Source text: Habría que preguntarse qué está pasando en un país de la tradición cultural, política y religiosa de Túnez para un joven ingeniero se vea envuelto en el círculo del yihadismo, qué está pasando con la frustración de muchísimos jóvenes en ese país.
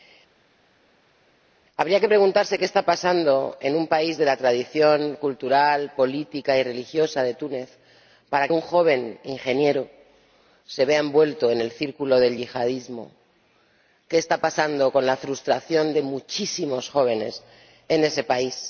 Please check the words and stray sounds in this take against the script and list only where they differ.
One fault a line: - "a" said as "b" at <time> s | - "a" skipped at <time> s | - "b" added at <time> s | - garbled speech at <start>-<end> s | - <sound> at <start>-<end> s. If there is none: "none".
none